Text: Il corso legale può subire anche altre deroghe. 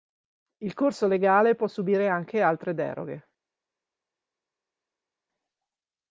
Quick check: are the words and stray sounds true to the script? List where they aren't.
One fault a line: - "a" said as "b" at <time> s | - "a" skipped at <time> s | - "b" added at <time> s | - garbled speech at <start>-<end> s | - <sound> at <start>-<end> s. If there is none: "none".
none